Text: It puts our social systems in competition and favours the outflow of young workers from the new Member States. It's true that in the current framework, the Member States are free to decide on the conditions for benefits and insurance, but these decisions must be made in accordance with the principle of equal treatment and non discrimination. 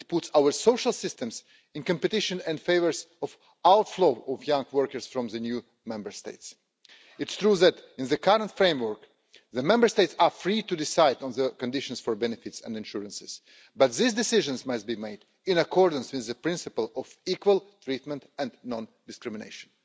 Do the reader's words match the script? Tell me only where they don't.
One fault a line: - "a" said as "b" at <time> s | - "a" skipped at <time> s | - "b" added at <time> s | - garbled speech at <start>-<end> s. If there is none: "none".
none